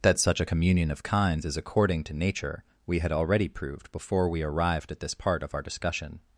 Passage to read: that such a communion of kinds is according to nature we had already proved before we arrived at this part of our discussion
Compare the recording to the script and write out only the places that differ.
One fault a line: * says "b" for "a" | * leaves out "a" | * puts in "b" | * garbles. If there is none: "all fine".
all fine